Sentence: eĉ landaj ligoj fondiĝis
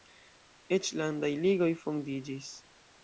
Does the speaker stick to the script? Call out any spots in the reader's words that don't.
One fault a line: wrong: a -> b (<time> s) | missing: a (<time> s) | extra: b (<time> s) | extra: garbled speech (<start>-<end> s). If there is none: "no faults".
no faults